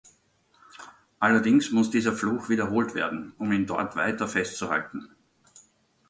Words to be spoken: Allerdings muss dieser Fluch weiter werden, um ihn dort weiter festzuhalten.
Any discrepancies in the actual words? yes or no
yes